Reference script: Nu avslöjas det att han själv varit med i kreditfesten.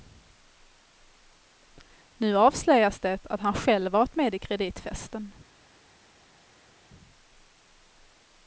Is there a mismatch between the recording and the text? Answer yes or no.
no